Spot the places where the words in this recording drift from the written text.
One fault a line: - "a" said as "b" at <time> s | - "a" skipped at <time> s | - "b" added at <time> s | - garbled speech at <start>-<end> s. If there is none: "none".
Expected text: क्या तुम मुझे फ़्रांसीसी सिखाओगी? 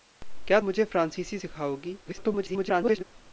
- "तुम" skipped at 0.6 s
- garbled speech at 2.0-3.0 s